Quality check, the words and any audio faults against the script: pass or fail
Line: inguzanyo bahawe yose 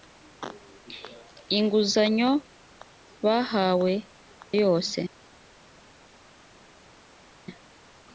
pass